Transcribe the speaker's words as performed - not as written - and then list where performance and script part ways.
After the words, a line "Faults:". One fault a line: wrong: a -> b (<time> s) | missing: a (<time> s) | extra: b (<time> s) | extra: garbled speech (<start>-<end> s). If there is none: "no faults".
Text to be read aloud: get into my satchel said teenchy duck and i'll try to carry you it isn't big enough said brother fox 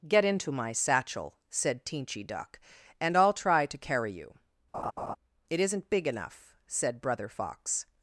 get into my satchel said teenchy duck and i'll try to carry you it isn't big enough said brother fox
Faults:
no faults